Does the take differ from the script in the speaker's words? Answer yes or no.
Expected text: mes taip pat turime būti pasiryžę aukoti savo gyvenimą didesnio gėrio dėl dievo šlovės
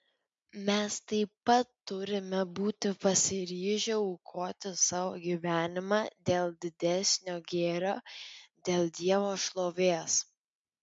yes